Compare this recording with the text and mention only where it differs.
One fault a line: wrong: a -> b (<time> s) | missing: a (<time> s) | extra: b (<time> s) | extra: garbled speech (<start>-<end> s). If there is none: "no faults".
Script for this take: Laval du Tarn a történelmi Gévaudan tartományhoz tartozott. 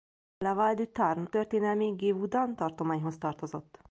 missing: a (1.3 s)